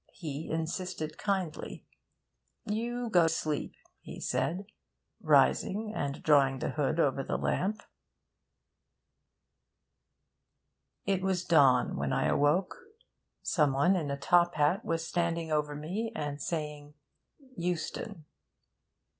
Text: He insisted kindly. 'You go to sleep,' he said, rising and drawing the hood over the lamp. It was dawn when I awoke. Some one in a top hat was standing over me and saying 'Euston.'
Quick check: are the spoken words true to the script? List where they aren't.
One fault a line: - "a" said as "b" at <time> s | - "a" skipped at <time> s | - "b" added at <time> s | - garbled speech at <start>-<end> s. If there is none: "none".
- "to" skipped at 3.3 s